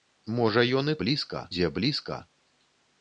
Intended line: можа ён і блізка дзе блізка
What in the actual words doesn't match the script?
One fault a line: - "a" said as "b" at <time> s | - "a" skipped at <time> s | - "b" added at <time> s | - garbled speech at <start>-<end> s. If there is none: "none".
none